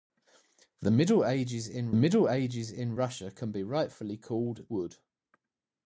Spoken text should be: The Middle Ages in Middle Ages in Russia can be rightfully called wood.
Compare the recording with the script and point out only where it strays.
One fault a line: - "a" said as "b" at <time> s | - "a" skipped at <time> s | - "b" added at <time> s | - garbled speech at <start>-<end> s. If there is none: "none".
none